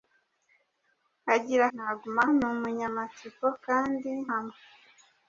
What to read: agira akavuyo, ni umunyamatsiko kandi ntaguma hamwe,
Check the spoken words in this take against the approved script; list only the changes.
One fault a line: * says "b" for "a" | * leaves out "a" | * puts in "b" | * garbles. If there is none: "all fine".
* says "ntaguma" for "akavuyo"
* leaves out "ntaguma"